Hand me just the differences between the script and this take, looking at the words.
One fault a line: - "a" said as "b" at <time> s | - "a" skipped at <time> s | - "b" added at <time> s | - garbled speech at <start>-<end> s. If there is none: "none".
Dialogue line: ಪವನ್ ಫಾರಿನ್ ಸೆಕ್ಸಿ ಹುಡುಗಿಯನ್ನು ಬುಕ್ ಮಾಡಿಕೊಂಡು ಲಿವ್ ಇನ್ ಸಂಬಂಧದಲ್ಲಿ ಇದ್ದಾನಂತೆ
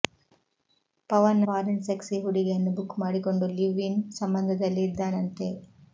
none